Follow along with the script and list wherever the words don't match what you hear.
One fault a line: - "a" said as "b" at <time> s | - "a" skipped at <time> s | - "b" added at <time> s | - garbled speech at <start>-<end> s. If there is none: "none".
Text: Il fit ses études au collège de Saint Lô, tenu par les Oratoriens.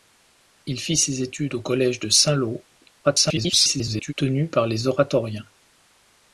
- garbled speech at 3.0-4.1 s